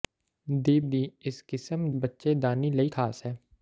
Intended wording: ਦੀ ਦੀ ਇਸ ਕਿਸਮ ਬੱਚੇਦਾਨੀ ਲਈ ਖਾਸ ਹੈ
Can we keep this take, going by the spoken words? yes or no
yes